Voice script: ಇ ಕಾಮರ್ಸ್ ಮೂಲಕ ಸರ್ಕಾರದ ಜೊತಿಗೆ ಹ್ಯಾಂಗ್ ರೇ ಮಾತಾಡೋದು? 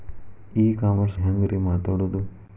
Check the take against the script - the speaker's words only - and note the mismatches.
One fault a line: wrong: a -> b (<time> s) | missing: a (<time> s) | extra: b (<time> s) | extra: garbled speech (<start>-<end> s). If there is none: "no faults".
missing: ಮೂಲಕ ಸರ್ಕಾರದ ಜೊತಿಗೆ (1.2 s)